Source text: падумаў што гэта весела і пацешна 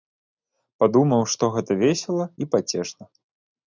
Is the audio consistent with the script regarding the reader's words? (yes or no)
yes